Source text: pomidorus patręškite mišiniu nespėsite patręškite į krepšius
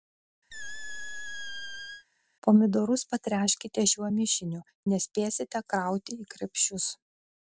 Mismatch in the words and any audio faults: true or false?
true